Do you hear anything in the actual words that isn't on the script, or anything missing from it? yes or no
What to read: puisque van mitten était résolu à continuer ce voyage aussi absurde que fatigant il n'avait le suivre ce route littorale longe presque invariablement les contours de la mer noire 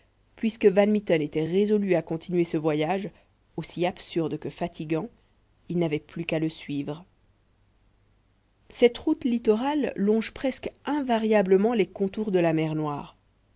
yes